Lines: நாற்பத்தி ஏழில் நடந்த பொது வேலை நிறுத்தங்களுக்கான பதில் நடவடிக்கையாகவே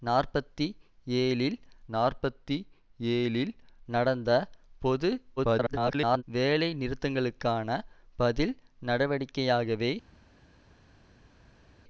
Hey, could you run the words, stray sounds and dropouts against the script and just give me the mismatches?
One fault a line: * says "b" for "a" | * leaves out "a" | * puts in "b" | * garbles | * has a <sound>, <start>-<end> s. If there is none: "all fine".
* puts in "நாற்பத்தி ஏழில்"
* garbles